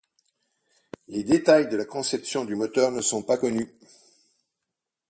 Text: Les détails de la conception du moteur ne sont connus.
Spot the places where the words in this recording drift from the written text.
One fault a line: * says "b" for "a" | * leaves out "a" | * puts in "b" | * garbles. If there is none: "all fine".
* puts in "pas"